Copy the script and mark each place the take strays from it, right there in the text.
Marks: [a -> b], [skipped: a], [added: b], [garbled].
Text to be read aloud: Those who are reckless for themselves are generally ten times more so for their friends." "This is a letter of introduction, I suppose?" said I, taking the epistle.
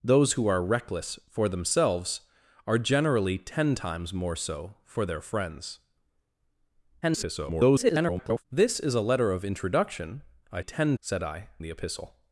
Those who are reckless for themselves are generally ten times more so for their friends." [garbled] "This is a letter of introduction, I [suppose?" -> ten] said I, [skipped: taking] the epistle.